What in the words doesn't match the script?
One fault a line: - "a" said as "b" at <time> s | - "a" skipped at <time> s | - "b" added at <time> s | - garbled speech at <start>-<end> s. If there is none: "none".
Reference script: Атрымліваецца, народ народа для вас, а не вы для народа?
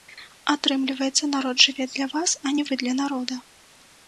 - "народа" said as "жыве" at 1.7 s